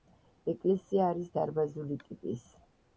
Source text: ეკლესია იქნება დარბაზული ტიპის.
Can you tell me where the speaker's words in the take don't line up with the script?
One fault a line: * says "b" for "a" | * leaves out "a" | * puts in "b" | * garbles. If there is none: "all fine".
* says "არის" for "იქნება"